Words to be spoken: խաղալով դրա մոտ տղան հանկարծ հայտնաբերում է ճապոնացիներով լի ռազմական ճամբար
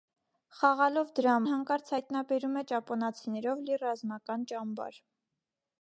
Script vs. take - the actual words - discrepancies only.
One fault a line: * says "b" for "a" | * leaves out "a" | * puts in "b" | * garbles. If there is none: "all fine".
* leaves out "մոտ տղան"